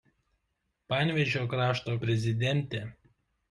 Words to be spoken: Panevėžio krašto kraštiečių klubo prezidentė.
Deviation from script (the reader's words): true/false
true